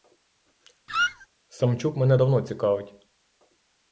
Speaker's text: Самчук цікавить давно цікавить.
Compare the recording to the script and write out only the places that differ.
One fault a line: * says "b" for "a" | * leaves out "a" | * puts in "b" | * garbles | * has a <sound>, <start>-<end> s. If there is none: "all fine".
* has a squeak, 0.9-1.3 s
* says "мене" for "цікавить"